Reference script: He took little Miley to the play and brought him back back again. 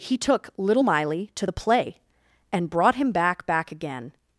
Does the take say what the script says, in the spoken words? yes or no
yes